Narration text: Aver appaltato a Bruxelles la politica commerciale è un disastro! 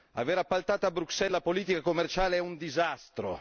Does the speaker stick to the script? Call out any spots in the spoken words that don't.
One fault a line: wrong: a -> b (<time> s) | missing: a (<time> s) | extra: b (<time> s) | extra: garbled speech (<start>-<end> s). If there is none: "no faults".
no faults